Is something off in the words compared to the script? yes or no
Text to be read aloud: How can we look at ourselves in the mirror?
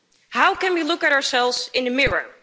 no